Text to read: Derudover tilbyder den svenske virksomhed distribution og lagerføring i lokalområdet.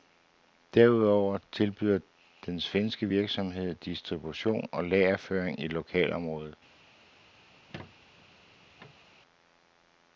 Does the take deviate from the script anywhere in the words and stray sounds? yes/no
yes